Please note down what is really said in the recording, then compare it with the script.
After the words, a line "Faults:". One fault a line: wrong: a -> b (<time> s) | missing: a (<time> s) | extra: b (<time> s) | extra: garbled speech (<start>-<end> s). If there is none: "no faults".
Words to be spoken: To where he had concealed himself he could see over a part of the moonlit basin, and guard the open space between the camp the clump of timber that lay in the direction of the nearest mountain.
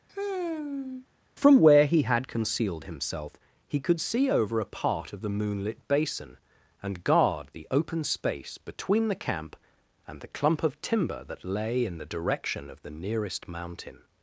From where he had concealed himself he could see over a part of the moonlit basin, and guard the open space between the camp and the clump of timber that lay in the direction of the nearest mountain.
Faults:
wrong: To -> From (1.4 s)
extra: and (10.1 s)